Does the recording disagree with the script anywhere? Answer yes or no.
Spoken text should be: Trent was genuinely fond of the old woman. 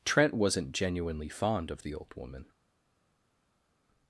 yes